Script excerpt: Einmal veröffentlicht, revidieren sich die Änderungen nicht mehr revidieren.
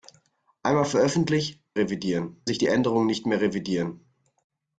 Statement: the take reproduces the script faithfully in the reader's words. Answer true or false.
true